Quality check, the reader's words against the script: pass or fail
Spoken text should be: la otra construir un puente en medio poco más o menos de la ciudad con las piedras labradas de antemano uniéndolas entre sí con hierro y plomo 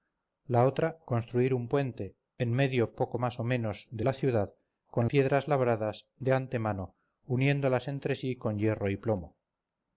fail